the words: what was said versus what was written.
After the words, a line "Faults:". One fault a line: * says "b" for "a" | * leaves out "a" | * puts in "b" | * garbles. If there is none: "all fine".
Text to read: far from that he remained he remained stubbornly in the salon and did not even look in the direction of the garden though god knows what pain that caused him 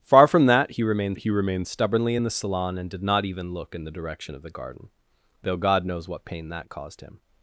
far from that he remained he remained stubbornly in the salon and did not even look in the direction of the garden though god knows what pain that caused him
Faults:
all fine